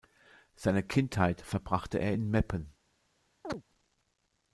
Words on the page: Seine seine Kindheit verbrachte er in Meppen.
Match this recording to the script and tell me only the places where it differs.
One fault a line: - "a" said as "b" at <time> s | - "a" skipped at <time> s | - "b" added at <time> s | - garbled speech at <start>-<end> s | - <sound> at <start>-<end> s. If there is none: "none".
- "seine" skipped at 0.8 s
- chirp at 3.4-3.6 s